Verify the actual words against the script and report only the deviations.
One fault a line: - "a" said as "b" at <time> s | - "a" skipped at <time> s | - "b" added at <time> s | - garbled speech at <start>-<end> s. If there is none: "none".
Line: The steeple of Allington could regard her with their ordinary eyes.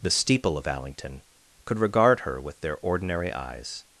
none